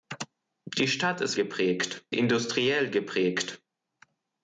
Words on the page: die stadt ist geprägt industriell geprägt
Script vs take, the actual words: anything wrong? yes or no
no